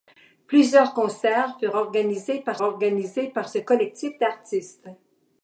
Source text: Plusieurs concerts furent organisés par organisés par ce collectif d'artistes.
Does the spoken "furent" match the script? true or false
true